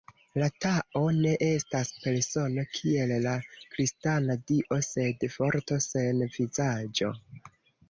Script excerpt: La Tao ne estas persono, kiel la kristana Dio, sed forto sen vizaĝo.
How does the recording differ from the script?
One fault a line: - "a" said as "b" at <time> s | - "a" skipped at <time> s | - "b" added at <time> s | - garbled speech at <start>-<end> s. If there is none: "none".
none